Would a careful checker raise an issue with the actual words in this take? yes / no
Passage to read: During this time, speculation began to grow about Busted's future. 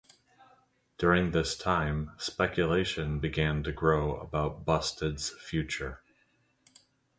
no